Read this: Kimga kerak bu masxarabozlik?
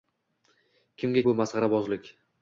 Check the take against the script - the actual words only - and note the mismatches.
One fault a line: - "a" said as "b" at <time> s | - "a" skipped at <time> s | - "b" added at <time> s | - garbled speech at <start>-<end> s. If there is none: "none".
- "kerak" skipped at 1.2 s